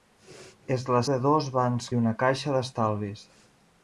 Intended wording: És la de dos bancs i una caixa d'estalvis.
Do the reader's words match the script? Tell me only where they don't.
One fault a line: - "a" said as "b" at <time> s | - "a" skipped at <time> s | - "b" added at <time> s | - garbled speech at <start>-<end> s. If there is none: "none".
none